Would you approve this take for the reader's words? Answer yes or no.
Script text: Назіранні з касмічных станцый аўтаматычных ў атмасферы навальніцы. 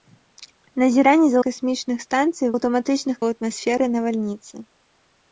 yes